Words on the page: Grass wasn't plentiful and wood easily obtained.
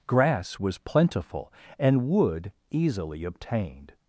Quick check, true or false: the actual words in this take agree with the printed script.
false